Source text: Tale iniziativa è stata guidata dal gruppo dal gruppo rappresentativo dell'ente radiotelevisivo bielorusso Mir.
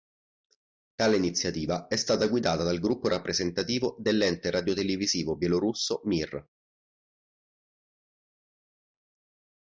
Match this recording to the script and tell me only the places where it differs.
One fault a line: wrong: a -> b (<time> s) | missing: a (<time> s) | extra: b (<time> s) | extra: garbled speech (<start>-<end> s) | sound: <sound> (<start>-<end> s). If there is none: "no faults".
missing: dal gruppo (3.1 s)